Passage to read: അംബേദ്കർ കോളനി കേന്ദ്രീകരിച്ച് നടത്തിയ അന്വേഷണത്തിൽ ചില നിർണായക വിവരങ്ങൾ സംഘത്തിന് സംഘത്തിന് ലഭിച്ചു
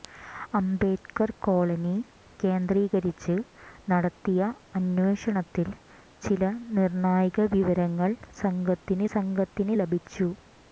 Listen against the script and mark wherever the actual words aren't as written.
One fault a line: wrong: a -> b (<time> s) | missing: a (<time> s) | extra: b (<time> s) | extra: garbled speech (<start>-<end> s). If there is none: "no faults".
no faults